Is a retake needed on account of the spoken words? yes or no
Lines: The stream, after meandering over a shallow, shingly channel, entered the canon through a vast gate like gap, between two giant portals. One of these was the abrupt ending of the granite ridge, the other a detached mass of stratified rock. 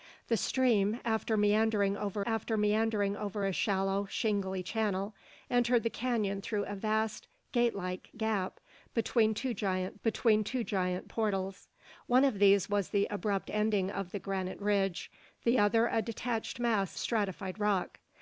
yes